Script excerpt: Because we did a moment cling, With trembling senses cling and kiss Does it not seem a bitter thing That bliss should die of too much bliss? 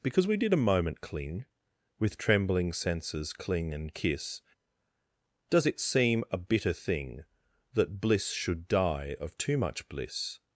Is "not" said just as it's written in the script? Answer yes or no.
no